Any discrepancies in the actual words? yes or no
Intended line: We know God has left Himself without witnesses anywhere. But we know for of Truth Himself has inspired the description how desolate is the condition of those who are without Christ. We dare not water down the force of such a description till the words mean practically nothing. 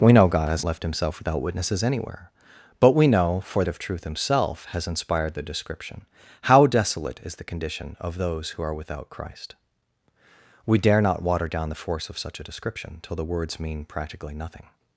no